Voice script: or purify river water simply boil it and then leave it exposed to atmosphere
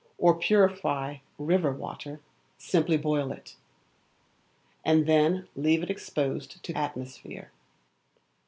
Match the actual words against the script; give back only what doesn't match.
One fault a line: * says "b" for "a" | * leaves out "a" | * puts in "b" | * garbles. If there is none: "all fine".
all fine